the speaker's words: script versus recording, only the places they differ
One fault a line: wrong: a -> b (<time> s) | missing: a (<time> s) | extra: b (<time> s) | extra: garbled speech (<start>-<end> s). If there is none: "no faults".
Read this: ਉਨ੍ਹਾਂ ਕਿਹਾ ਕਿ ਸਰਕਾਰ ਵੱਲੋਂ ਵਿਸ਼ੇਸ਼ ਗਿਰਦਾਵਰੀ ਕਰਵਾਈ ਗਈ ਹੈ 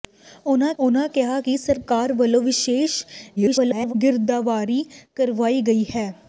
extra: ਉਨ੍ਹਾਂ (0.8 s)
extra: garbled speech (3.4-3.9 s)